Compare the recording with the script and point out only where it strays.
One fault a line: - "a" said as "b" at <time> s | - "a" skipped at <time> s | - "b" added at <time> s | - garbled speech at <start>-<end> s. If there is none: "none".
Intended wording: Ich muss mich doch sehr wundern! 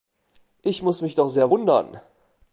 none